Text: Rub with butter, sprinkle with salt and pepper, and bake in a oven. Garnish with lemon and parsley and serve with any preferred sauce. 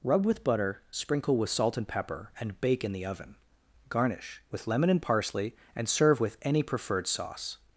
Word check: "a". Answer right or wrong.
wrong